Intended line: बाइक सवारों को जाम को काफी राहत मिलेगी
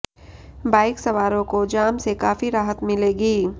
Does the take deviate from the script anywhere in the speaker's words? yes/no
yes